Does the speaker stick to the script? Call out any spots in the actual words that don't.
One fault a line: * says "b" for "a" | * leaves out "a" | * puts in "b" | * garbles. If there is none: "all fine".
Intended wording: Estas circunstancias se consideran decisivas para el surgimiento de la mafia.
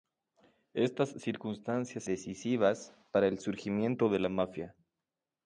* leaves out "se consideran"